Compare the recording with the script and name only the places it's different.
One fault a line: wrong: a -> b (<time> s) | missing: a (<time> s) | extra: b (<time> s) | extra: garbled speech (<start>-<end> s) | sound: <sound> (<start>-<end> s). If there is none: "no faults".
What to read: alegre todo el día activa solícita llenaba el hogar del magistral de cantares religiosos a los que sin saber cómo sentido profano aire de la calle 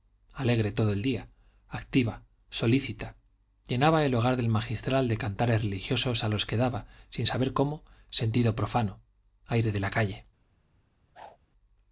extra: daba (6.5 s)
sound: whoosh (11.1-11.4 s)